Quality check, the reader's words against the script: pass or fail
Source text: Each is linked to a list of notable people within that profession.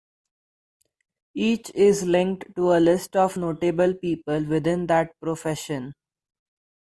pass